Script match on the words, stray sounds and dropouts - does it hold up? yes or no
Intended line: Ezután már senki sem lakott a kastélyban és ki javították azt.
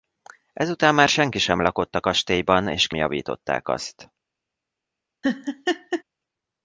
no